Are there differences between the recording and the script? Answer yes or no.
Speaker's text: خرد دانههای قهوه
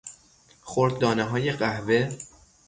no